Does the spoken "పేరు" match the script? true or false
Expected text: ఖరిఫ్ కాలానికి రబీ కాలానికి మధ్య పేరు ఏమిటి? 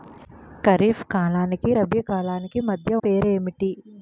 true